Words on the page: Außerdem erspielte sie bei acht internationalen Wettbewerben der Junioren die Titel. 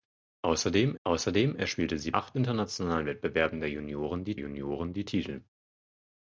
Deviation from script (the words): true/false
true